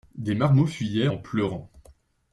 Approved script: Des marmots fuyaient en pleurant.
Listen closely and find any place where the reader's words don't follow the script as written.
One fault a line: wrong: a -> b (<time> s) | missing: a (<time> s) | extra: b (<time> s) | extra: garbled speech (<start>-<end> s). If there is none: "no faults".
no faults